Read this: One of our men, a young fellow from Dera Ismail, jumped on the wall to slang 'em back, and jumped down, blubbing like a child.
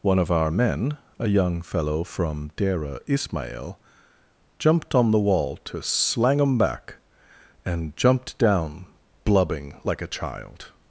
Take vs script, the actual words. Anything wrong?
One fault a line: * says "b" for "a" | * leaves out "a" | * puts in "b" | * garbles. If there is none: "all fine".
all fine